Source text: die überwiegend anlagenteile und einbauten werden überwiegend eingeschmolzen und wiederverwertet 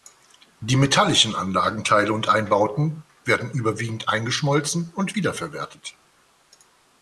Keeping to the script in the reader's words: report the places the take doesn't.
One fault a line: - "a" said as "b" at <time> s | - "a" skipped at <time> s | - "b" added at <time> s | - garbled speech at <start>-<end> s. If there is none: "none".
- "überwiegend" said as "metallischen" at 0.8 s